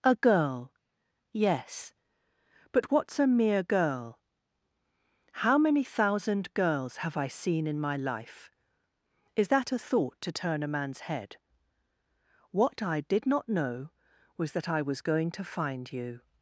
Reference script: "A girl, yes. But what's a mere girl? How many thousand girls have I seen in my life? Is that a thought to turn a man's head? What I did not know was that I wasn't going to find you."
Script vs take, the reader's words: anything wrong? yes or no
yes